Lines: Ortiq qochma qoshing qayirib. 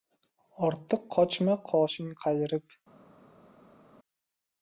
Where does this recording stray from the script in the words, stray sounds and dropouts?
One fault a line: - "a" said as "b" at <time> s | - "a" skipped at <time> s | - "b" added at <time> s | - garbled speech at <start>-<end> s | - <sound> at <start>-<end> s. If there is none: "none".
none